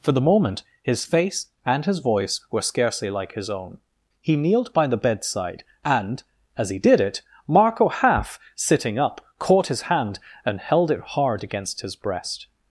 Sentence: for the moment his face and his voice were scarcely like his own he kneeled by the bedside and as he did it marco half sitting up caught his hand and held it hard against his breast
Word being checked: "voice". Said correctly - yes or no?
yes